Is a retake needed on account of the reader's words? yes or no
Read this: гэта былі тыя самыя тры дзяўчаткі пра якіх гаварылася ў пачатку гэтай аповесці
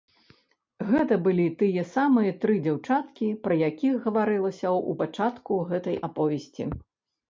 no